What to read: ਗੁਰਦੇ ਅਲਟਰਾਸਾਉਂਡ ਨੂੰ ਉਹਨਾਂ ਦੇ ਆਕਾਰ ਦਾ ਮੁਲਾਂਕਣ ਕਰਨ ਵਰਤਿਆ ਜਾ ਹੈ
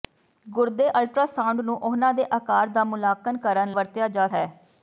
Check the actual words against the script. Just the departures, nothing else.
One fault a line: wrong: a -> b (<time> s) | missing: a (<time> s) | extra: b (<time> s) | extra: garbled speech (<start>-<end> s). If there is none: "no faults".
no faults